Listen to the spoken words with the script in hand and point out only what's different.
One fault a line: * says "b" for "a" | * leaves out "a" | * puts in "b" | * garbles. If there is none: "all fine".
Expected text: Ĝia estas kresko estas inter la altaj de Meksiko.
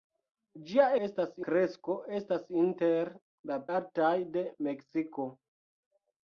all fine